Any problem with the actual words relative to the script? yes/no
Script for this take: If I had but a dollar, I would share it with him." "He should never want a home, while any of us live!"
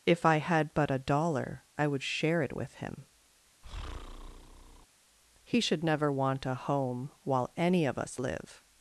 no